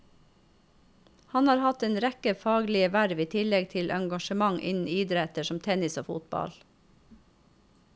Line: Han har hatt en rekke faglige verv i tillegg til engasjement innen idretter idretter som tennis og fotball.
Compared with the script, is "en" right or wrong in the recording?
right